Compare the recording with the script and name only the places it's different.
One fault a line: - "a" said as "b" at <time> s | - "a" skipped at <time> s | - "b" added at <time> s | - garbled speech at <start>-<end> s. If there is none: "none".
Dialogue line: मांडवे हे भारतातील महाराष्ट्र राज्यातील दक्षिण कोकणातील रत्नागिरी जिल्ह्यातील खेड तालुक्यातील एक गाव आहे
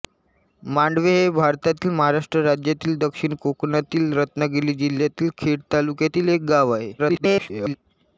- garbled speech at 7.0-7.8 s